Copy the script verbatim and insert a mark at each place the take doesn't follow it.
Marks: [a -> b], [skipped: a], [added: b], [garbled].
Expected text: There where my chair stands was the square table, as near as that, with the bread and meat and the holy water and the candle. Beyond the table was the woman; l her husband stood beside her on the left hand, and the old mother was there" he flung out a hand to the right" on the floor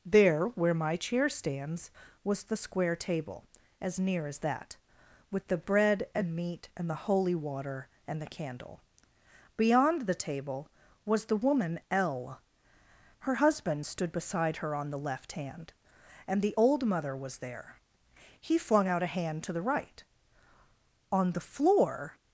There where my chair stands was the square table, as near as that, with the bread and meat and the holy water and the candle. Beyond the table was the woman; l her husband stood beside her on the left hand, and the old mother was there" he flung out a hand to the right" on the floor